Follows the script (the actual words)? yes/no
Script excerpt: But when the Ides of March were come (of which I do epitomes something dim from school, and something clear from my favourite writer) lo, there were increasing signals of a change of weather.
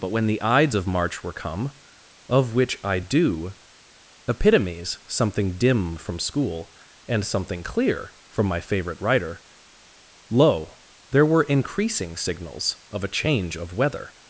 yes